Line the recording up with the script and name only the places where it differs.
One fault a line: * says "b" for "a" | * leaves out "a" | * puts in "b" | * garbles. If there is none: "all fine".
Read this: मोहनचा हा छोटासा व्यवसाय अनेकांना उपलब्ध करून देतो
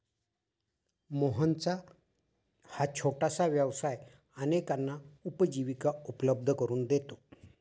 * puts in "उपजीविका"